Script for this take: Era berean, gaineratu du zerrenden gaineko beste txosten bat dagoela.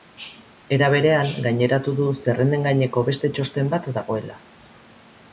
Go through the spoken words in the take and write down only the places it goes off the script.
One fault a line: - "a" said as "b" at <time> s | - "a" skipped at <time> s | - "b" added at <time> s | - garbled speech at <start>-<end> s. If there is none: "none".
none